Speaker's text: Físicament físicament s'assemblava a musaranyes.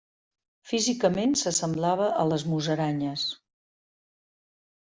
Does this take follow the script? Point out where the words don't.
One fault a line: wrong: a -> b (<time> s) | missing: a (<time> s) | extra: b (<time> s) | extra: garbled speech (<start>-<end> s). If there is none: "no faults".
missing: físicament (1.4 s)
extra: les (2.3 s)